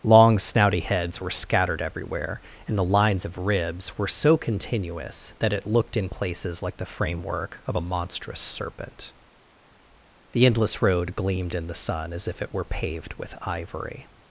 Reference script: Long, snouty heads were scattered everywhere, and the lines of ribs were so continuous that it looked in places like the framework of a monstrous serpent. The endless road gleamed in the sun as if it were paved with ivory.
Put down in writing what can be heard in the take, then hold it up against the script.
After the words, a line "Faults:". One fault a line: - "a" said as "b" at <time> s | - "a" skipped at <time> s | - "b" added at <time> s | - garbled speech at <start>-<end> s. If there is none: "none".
Long, snouty heads were scattered everywhere, and the lines of ribs were so continuous that it looked in places like the framework of a monstrous serpent. The endless road gleamed in the sun as if it were paved with ivory.
Faults:
none